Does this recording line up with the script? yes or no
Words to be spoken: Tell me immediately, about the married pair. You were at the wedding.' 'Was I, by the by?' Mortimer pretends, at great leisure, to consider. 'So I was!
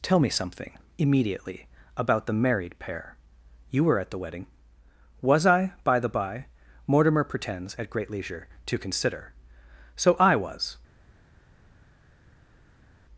no